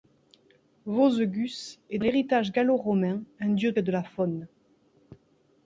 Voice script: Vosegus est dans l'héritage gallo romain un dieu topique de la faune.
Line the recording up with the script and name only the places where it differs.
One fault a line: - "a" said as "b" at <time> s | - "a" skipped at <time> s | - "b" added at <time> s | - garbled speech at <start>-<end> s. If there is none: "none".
- "dans" skipped at 2.0 s
- "topique" skipped at 3.7 s